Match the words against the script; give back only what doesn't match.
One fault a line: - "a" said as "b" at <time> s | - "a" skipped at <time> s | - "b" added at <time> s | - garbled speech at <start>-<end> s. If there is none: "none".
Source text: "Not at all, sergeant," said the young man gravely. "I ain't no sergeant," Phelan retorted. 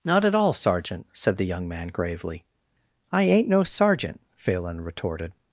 none